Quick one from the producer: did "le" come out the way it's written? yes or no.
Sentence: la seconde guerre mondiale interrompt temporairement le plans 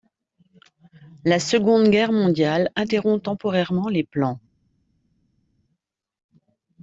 no